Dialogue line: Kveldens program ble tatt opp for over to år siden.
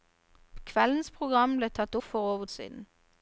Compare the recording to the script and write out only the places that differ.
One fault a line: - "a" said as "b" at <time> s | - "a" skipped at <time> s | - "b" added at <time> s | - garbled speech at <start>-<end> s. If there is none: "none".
- "opp" skipped at 1.9 s
- "to år" skipped at 2.5 s